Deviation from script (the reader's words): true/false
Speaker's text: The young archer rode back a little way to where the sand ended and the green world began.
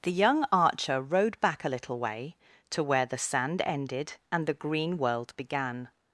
false